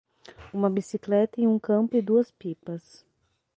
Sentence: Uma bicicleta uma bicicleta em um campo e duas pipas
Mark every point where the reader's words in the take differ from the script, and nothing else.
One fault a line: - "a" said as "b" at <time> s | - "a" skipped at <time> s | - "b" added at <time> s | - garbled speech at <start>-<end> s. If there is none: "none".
- "uma bicicleta" skipped at 1.4 s